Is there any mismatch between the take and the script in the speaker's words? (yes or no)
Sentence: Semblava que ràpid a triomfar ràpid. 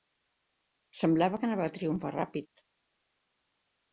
yes